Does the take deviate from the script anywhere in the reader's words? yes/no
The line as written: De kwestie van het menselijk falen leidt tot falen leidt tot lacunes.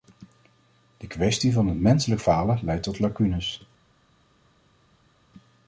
yes